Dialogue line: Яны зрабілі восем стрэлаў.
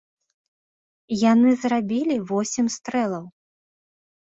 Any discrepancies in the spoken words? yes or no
no